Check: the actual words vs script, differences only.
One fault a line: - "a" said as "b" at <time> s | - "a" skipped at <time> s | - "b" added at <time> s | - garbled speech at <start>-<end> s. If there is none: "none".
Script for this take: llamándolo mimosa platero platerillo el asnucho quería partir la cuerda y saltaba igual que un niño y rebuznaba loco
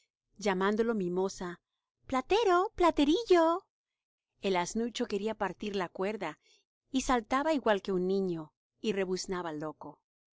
none